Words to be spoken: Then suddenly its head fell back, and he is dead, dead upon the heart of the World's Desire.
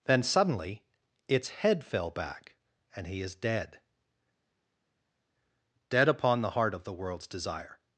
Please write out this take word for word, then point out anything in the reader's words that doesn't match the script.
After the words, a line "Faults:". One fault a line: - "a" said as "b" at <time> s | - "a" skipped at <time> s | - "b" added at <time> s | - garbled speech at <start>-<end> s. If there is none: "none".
Then suddenly its head fell back, and he is dead, dead upon the heart of the World's Desire.
Faults:
none